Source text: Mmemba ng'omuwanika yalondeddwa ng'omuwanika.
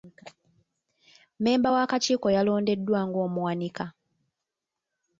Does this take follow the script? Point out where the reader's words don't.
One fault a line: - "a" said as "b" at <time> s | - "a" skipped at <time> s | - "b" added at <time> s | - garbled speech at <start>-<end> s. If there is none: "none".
- "ng'omuwanika" said as "w'akakiiko" at 1.7 s